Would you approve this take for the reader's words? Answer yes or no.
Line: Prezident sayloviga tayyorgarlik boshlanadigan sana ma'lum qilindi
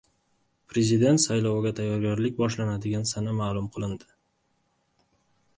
yes